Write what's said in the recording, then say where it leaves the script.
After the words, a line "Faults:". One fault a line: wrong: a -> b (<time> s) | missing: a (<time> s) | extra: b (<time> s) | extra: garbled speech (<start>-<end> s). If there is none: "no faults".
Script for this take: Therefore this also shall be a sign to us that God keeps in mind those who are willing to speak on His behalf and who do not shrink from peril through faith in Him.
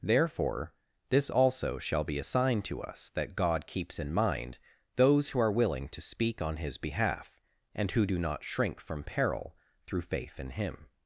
Therefore this also shall be a sign to us that God keeps in mind those who are willing to speak on His behalf and who do not shrink from peril through faith in Him.
Faults:
no faults